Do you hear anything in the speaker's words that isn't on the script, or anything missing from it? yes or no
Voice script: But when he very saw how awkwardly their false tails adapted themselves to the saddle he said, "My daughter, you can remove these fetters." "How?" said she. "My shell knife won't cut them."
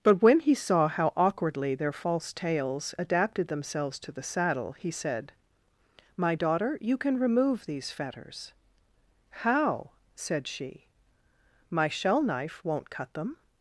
yes